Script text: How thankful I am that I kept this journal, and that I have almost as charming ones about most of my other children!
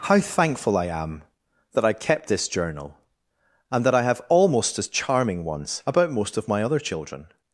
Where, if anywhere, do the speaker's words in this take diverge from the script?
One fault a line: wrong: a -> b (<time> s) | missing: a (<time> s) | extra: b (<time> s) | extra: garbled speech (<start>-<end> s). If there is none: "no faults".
no faults